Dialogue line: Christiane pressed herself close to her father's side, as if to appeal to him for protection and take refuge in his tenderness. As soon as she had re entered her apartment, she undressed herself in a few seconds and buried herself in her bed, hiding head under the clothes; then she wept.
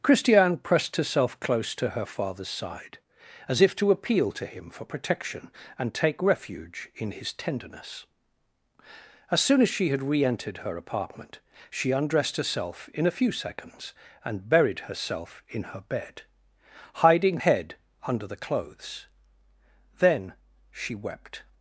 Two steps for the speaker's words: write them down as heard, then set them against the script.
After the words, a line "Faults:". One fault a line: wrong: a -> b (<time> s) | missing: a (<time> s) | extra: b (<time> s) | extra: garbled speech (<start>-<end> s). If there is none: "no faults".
Christiane pressed herself close to her father's side, as if to appeal to him for protection and take refuge in his tenderness. As soon as she had re entered her apartment, she undressed herself in a few seconds and buried herself in her bed, hiding head under the clothes; then she wept.
Faults:
no faults